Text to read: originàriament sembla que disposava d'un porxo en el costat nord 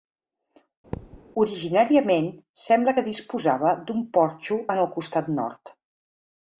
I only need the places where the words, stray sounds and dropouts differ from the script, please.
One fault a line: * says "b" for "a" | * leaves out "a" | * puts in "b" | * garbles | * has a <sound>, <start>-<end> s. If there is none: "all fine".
* has a thud, 0.9-1.2 s